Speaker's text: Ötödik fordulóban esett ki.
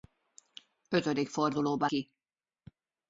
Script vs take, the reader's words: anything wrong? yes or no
yes